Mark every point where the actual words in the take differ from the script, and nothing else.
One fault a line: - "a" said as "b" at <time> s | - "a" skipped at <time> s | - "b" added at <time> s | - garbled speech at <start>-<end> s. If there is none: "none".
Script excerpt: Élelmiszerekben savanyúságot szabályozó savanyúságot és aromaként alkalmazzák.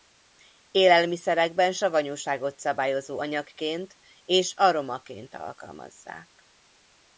- "savanyúságot" said as "anyagként" at 3.2 s